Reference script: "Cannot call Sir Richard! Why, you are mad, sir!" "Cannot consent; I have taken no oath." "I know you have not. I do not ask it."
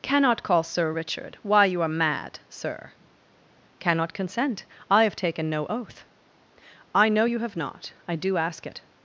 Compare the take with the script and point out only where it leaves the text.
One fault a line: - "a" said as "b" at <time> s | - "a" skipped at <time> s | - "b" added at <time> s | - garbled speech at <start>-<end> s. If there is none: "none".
- "not" skipped at 8.4 s